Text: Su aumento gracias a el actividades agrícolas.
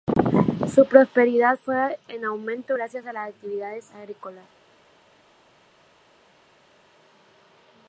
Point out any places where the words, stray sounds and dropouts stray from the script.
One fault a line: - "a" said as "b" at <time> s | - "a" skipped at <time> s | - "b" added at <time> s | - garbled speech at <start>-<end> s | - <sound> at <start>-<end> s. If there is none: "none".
- "prosperidad fue en" added at 0.9 s
- "el" said as "las" at 3.1 s